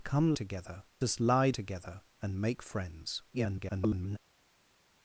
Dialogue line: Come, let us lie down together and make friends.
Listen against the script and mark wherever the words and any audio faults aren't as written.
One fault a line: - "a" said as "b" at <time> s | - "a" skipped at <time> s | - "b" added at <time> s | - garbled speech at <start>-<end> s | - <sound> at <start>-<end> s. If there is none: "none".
- "let" said as "together" at 0.3 s
- "down" skipped at 1.5 s
- garbled speech at 3.3-4.2 s